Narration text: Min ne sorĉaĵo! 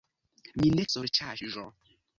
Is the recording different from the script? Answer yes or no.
no